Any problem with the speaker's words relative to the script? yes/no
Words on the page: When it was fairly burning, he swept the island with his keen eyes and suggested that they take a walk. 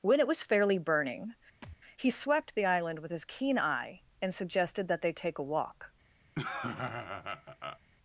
yes